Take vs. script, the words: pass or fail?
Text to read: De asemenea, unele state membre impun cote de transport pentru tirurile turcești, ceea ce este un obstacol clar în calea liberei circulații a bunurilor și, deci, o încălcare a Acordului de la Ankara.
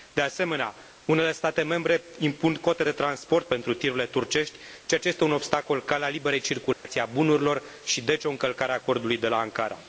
fail